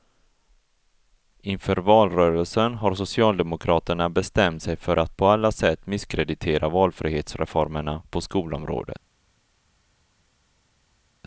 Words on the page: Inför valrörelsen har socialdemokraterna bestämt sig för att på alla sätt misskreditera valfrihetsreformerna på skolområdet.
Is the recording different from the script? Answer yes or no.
no